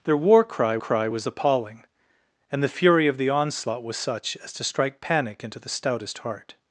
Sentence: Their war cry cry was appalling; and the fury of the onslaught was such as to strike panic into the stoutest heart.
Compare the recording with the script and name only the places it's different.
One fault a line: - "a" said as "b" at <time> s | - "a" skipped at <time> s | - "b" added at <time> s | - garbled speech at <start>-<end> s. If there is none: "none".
none